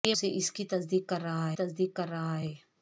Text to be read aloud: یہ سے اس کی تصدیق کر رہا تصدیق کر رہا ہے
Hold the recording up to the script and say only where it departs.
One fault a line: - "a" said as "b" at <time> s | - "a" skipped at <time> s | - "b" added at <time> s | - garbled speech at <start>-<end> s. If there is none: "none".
none